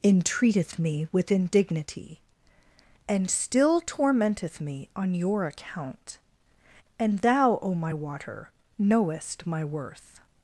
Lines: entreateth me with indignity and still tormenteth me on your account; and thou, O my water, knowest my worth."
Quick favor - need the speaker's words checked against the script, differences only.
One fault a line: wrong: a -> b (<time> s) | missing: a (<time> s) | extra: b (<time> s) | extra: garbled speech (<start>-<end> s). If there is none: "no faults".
no faults